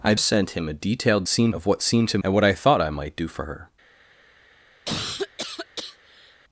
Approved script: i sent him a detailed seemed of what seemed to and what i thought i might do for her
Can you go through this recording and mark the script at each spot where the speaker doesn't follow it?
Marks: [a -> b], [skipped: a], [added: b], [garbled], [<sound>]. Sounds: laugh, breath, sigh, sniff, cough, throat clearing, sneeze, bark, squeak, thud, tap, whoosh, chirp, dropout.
i sent him a detailed seemed of what seemed to and what i thought i might do for her [cough]